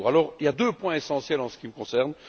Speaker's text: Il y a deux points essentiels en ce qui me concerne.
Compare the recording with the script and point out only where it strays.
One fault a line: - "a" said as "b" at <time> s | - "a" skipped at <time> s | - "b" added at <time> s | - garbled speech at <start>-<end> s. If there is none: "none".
none